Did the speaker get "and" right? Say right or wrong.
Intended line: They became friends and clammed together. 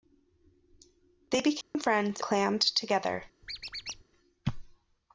wrong